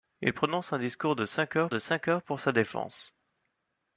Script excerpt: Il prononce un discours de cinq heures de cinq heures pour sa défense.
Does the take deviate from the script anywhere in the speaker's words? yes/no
no